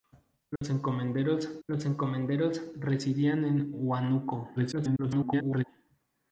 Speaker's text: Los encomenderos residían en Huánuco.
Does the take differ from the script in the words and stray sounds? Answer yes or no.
yes